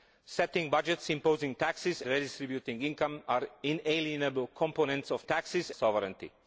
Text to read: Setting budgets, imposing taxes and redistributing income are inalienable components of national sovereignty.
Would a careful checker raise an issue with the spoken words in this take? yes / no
yes